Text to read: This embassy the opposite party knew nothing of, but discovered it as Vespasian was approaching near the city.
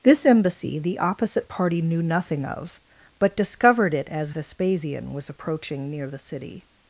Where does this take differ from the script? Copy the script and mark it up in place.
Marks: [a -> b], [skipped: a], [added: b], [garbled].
This embassy the opposite party knew nothing of, but discovered it as Vespasian was approaching near the city.